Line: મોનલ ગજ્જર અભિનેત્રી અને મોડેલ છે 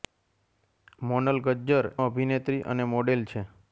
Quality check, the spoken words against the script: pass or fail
pass